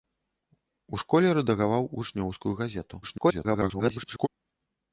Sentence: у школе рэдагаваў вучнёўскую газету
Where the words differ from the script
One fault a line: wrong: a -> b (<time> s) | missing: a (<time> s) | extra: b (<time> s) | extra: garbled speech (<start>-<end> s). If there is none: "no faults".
extra: garbled speech (3.0-4.3 s)